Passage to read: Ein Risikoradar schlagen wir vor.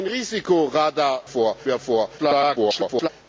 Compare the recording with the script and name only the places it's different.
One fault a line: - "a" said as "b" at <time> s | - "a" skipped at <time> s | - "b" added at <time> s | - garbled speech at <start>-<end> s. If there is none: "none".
- "schlagen" said as "vor" at 1.3 s
- garbled speech at 2.2-3.1 s